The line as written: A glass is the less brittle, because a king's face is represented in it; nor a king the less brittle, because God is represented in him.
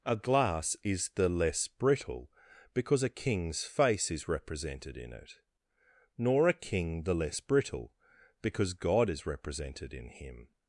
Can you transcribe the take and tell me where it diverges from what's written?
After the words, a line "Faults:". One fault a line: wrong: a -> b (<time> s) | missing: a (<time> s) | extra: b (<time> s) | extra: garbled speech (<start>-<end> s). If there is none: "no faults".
A glass is the less brittle, because a king's face is represented in it; nor a king the less brittle, because God is represented in him.
Faults:
no faults